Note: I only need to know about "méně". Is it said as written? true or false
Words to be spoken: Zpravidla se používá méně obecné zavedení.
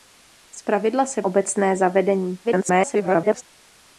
false